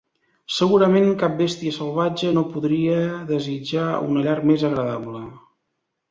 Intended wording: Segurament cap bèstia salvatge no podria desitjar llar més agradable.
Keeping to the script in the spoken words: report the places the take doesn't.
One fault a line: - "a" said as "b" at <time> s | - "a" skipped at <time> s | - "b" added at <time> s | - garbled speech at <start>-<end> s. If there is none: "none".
- "una" added at 4.1 s